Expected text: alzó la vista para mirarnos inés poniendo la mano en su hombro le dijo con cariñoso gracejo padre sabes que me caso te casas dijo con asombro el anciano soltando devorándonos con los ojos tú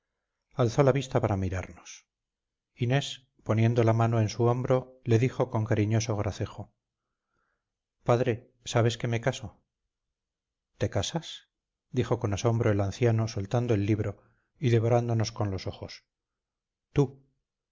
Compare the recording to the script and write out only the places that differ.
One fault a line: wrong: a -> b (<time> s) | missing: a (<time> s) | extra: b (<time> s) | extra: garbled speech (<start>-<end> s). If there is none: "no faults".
extra: el libro y (13.7 s)